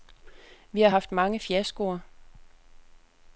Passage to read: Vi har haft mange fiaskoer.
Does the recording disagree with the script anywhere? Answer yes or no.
no